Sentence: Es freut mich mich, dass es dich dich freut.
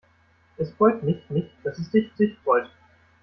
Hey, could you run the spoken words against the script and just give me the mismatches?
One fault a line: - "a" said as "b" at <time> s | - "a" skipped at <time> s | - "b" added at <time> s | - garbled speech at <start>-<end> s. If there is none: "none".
none